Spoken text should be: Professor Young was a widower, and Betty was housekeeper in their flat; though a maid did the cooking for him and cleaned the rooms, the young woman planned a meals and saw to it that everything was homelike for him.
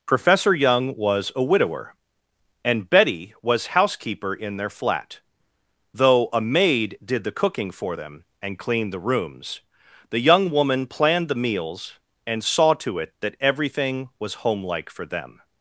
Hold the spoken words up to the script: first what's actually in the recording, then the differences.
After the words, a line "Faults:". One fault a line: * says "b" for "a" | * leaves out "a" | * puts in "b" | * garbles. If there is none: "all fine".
Professor Young was a widower, and Betty was housekeeper in their flat; though a maid did the cooking for them and cleaned the rooms, the young woman planned the meals and saw to it that everything was homelike for them.
Faults:
* says "them" for "him"
* says "the" for "a"
* says "them" for "him"